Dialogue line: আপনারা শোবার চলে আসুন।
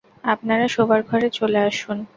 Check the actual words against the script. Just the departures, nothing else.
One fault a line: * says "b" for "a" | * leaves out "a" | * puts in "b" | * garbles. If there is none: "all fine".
* puts in "ঘরে"